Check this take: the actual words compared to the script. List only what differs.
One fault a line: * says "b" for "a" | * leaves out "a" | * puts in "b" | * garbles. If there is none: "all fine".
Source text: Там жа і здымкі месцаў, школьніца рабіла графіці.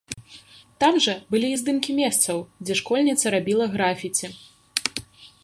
* puts in "былі"
* puts in "дзе"